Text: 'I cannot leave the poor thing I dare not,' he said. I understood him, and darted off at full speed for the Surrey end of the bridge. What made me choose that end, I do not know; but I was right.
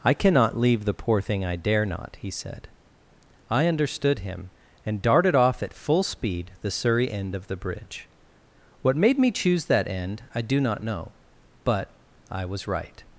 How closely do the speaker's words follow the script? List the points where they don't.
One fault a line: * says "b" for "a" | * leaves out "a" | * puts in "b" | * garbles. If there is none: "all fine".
* leaves out "for"